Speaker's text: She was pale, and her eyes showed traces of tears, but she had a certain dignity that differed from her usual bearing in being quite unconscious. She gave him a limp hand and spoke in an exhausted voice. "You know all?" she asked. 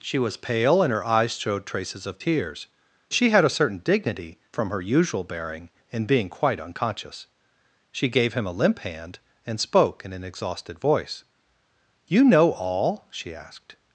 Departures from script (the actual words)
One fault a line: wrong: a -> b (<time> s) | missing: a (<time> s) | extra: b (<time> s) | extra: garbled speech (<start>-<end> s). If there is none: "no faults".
missing: but (2.7 s)
missing: that differed (4.4 s)